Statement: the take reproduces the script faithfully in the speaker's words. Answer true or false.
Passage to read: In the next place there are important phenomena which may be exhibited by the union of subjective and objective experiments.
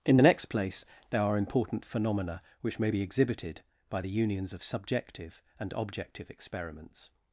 false